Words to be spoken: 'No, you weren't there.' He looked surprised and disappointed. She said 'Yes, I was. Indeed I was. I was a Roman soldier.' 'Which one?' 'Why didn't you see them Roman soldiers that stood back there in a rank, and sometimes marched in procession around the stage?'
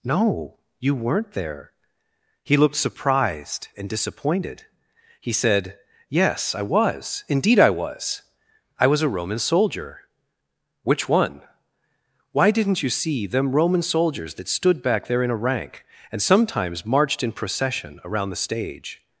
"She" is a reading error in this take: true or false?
true